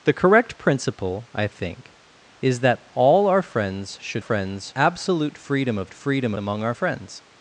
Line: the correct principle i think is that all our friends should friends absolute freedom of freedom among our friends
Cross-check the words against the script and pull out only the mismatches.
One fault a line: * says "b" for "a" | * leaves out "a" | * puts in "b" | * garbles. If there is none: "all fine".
all fine